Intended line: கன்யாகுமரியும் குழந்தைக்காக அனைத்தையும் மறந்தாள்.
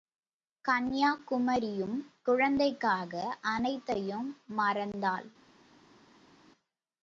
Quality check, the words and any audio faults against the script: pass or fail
pass